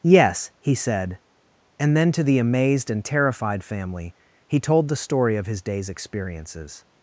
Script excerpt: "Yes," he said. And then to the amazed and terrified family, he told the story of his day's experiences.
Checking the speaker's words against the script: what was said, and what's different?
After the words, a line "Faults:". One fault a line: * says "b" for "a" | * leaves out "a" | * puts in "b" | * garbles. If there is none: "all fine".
"Yes," he said. And then to the amazed and terrified family, he told the story of his day's experiences.
Faults:
all fine